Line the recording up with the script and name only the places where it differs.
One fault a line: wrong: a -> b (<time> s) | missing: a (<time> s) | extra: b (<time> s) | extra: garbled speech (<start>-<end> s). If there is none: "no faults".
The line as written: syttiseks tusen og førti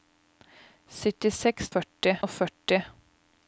wrong: tusen -> førti (1.7 s)